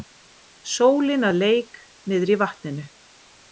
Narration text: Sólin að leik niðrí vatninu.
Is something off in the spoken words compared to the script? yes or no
no